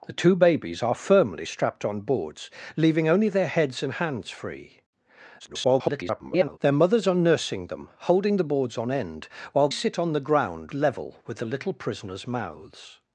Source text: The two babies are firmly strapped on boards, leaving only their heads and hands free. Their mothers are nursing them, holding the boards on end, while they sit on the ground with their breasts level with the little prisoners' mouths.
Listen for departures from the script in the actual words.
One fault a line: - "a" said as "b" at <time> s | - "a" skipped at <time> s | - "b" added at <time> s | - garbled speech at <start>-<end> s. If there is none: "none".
- garbled speech at 5.4-6.6 s
- "they" skipped at 9.7 s
- "with their breasts" skipped at 10.7 s